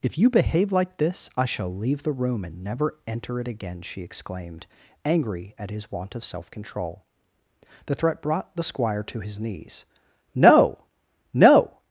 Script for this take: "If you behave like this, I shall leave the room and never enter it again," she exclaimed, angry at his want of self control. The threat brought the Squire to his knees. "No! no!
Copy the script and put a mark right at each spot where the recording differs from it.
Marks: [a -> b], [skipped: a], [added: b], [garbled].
"If you behave like this, I shall leave the room and never enter it again," she exclaimed, angry at his want of self control. The threat brought the Squire to his knees. "No! no!